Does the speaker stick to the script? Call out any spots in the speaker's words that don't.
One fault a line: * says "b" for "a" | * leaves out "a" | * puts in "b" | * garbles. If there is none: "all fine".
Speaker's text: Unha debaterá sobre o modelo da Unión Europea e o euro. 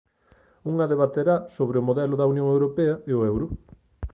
all fine